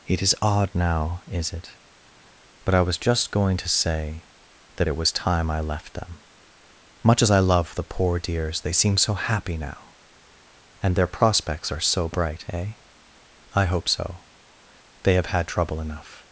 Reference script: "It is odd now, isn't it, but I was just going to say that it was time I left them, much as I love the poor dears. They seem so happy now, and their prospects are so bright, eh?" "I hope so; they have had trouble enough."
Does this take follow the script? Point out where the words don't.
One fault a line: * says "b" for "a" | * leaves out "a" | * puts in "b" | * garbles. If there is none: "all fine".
* says "is" for "isn't"